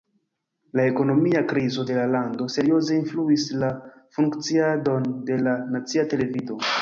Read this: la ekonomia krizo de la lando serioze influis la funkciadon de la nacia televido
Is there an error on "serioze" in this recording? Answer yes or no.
no